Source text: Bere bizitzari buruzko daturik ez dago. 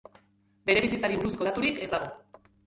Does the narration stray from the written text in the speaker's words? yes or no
no